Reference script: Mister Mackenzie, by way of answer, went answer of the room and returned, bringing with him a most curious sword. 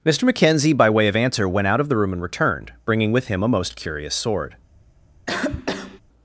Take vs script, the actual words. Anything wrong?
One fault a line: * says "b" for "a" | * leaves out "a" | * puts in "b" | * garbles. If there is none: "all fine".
* says "out" for "answer"